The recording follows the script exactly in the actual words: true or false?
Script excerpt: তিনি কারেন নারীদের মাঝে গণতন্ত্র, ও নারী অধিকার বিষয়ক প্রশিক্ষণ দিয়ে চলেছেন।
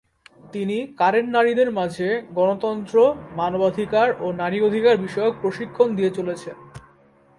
false